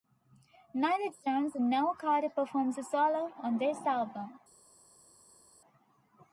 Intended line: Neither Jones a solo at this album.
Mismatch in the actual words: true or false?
true